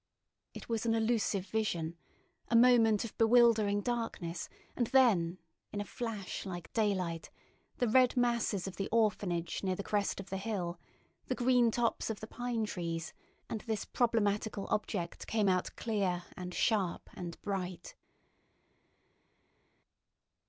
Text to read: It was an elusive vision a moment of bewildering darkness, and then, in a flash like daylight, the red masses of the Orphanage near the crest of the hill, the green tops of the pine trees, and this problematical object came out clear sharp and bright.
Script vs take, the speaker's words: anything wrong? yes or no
yes